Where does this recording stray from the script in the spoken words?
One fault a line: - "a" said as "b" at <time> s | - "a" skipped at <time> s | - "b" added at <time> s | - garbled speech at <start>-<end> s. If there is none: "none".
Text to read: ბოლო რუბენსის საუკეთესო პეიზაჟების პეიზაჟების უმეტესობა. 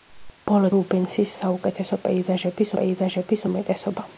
none